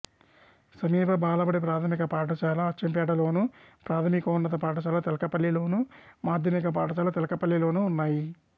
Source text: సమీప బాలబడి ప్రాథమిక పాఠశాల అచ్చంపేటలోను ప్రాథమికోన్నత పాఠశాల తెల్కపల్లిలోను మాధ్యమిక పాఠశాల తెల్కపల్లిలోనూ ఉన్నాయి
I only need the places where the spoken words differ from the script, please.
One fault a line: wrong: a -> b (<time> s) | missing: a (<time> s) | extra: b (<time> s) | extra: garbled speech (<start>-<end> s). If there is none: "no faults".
no faults